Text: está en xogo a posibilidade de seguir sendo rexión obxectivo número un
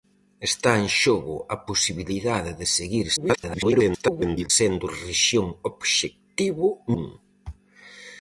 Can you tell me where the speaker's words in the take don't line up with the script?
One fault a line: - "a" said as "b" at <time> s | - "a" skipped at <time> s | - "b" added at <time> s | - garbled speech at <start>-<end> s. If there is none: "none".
- garbled speech at 3.2-4.5 s
- "número" skipped at 6.7 s